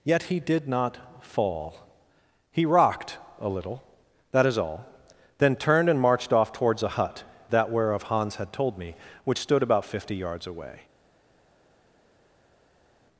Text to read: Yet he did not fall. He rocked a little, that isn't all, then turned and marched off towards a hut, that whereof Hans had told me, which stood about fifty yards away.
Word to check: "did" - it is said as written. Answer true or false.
true